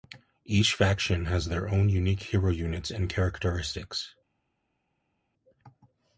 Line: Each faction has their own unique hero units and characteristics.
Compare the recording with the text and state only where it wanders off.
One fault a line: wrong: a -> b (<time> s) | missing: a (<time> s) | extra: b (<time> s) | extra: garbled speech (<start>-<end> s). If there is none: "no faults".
no faults